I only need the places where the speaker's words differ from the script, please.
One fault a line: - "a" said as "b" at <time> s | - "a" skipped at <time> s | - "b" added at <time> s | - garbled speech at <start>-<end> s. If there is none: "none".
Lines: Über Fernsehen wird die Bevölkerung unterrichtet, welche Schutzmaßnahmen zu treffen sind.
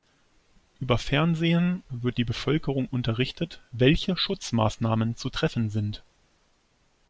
none